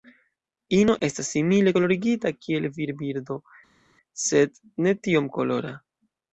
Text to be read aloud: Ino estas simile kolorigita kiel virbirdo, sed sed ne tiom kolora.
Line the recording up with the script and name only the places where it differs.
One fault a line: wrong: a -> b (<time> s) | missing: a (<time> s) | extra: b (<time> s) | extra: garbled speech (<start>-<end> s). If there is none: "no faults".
missing: sed (4.6 s)